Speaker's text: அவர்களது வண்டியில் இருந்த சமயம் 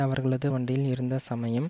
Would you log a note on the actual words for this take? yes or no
no